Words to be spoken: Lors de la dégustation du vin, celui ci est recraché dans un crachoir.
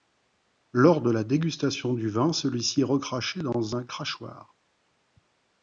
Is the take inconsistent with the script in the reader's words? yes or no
no